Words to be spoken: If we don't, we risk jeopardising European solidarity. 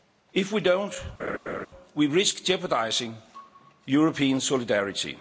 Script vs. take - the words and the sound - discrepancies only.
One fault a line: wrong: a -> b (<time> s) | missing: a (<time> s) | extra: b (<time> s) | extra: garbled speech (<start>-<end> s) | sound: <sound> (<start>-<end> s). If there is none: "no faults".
sound: laugh (1.2-1.7 s)